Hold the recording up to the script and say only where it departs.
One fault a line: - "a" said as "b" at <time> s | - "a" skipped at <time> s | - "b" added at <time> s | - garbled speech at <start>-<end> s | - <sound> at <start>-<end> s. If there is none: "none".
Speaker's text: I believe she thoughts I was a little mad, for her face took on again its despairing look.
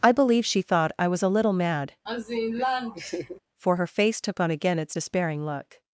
- "thoughts" said as "thought" at 0.6 s
- laugh at 2.1-3.4 s